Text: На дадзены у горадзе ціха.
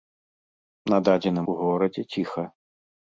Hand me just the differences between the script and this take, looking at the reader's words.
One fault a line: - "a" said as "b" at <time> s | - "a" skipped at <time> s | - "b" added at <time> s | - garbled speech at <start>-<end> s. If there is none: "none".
none